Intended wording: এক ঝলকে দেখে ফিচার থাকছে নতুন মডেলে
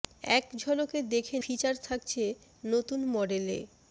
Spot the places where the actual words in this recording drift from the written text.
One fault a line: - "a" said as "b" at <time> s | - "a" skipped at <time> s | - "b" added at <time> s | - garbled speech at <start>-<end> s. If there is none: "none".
none